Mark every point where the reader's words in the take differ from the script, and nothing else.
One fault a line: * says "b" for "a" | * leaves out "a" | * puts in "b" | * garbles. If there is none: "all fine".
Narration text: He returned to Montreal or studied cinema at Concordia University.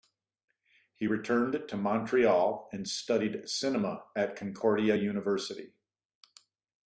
* says "and" for "or"